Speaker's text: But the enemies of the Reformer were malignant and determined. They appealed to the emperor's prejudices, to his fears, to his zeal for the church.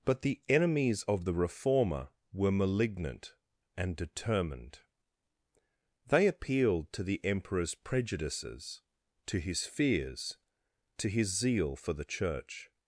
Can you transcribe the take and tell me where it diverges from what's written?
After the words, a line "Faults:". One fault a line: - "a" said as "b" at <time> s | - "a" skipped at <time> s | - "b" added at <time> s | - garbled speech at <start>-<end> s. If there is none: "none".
But the enemies of the Reformer were malignant and determined. They appealed to the emperor's prejudices, to his fears, to his zeal for the church.
Faults:
none